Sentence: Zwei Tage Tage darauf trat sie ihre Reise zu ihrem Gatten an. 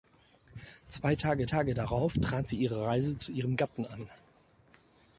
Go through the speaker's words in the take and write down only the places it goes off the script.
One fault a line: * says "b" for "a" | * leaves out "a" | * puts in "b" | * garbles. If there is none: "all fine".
all fine